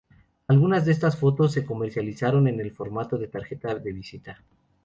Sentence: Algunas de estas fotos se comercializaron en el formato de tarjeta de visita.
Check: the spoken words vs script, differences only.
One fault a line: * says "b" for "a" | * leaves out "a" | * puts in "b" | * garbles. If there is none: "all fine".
all fine